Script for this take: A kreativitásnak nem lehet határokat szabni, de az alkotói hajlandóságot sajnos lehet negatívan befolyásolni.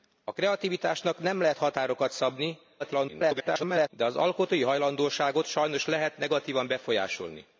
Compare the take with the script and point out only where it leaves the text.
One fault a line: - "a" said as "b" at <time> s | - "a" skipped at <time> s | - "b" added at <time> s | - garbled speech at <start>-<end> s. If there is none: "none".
- garbled speech at 2.8-3.9 s